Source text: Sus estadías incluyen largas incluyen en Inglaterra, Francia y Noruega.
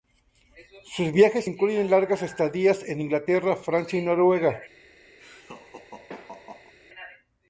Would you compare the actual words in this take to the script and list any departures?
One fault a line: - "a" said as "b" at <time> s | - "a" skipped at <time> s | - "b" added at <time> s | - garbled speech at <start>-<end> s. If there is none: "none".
- "estadías" said as "viajes" at 1.1 s
- "incluyen" said as "estadías" at 2.2 s